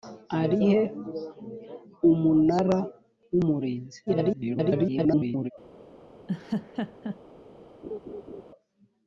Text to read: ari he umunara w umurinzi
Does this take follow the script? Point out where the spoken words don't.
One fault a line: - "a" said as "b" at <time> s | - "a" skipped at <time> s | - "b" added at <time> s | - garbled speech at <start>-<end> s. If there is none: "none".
- garbled speech at 4.1-5.5 s